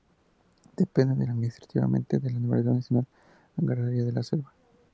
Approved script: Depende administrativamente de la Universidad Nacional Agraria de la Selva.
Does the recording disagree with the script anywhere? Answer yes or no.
no